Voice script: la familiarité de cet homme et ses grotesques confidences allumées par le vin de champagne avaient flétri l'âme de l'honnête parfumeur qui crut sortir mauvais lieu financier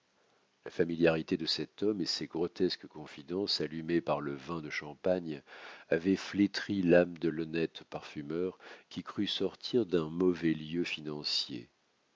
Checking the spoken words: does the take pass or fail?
fail